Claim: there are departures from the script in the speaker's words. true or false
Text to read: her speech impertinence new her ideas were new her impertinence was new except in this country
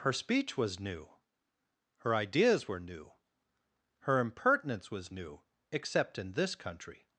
true